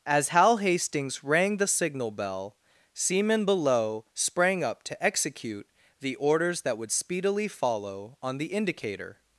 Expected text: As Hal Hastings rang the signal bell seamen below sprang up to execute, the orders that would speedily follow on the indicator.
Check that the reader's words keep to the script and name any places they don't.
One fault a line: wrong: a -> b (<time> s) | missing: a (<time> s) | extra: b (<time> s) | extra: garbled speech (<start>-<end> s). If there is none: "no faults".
no faults